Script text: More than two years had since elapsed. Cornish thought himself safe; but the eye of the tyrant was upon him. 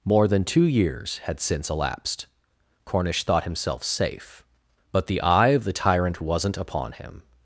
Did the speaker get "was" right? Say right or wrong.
wrong